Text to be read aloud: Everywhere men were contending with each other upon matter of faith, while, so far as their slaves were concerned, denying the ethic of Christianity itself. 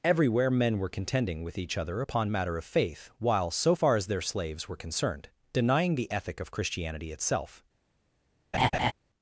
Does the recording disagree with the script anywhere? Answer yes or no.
no